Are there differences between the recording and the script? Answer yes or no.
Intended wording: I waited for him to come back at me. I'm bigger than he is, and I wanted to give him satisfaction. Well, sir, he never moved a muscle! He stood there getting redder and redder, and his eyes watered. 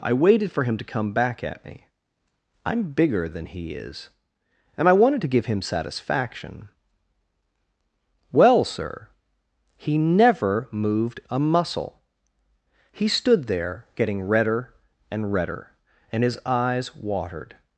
no